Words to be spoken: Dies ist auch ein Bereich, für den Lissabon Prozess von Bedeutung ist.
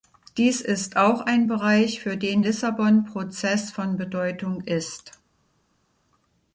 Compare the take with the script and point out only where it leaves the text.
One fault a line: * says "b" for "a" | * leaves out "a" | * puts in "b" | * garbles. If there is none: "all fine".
all fine